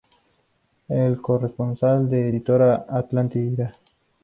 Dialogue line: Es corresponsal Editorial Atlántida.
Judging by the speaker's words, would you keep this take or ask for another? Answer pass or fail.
fail